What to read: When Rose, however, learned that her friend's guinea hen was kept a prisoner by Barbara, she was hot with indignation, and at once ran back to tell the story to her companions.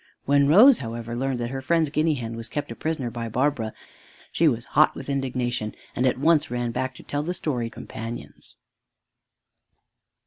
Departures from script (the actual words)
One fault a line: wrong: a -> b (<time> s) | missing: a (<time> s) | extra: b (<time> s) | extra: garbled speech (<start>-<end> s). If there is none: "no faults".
missing: to her (7.7 s)